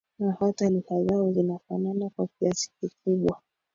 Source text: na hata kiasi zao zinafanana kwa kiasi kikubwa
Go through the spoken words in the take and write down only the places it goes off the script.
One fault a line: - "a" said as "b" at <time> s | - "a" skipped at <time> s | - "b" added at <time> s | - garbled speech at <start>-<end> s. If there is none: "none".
- "kiasi" said as "lugha" at 0.7 s